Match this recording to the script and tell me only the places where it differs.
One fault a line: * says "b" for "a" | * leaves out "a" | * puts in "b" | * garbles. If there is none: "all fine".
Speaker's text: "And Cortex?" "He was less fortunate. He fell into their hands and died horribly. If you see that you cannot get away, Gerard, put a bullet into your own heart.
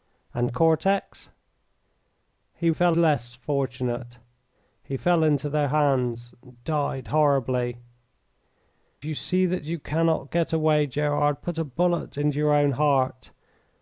* says "fell" for "was"
* leaves out "If"